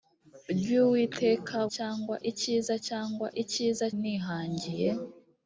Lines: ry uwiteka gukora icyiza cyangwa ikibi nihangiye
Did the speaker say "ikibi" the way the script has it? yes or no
no